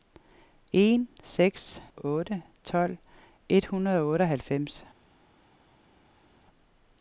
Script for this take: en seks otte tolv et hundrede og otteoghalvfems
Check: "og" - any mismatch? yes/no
no